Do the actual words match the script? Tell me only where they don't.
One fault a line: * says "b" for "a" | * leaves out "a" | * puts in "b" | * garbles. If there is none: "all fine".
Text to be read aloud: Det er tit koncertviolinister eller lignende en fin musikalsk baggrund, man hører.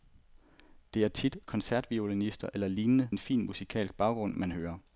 all fine